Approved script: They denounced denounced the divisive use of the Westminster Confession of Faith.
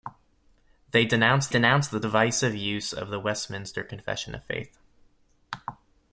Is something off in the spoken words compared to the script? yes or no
no